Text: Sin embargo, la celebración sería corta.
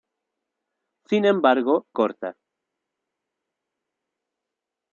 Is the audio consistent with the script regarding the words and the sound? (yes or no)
no